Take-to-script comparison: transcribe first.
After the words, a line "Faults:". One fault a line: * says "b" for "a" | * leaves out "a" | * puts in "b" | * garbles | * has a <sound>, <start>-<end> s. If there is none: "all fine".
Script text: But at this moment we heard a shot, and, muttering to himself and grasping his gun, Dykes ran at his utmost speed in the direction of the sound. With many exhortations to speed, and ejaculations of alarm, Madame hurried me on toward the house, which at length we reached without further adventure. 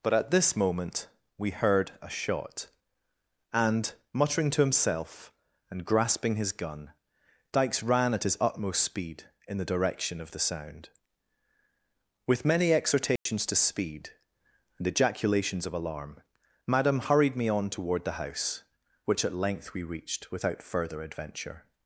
But at this moment we heard a shot, and, muttering to himself and grasping his gun, Dykes ran at his utmost speed in the direction of the sound. With many exhortations to speed, and ejaculations of alarm, Madame hurried me on toward the house, which at length we reached without further adventure.
Faults:
* has a dropout, 13.2-13.3 s